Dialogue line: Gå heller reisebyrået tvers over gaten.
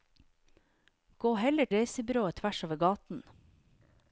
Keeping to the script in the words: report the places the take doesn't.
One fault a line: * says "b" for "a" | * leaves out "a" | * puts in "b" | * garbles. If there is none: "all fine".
all fine